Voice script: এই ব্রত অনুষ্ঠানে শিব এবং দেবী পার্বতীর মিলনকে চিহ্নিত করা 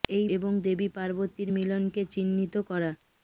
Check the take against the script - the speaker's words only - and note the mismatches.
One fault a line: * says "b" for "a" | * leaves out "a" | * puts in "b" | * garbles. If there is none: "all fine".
* leaves out "ব্রত অনুষ্ঠানে শিব"